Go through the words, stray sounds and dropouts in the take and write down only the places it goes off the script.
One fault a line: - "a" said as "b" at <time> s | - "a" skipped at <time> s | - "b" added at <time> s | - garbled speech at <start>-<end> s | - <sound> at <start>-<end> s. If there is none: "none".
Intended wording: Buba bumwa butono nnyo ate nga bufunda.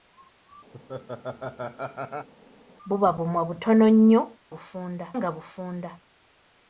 - laugh at 0.7-2.3 s
- "ate" said as "bufunda" at 4.5 s